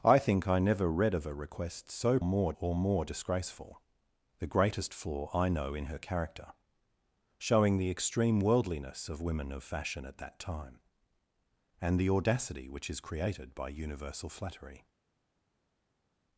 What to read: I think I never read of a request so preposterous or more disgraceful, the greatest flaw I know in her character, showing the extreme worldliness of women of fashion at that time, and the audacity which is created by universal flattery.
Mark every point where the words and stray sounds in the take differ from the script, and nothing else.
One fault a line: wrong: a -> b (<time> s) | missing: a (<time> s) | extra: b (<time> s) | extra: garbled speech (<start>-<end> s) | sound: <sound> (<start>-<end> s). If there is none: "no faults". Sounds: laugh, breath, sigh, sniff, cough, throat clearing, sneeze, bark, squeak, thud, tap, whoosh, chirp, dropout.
wrong: preposterous -> more (2.2 s)